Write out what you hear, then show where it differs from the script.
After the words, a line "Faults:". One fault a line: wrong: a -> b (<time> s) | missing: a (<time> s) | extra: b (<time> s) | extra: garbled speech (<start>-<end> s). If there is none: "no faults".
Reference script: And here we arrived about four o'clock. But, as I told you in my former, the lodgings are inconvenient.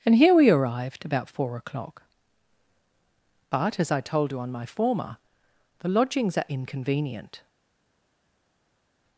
And here we arrived about four o'clock. But, as I told you on my former, the lodgings are inconvenient.
Faults:
wrong: in -> on (4.4 s)